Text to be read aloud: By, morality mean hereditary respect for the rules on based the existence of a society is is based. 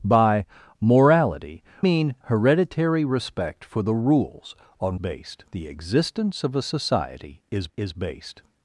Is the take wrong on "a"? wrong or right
right